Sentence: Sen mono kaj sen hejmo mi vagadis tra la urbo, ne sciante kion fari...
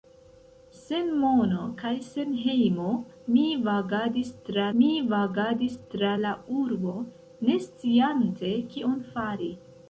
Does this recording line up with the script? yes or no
no